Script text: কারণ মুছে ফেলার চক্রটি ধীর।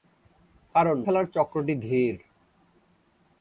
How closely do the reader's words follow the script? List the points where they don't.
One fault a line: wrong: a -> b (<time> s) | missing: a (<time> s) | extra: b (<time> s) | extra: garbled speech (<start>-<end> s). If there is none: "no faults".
missing: মুছে (1.0 s)